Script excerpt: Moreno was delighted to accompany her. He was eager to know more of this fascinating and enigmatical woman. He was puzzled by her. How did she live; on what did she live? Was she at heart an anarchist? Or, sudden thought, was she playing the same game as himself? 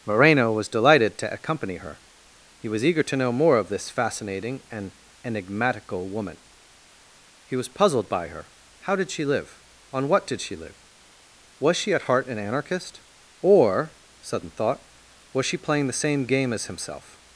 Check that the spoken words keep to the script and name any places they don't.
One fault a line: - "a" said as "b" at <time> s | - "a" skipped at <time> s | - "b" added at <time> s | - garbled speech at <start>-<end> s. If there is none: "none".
none